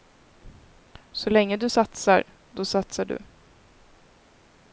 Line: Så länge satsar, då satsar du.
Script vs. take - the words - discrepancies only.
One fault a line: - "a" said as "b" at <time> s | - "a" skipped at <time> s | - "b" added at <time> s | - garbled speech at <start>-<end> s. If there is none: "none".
- "du" added at 1.6 s